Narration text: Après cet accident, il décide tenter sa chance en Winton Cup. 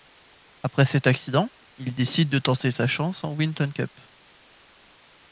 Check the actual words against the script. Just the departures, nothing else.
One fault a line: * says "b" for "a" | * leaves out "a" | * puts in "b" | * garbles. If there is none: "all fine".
* puts in "de"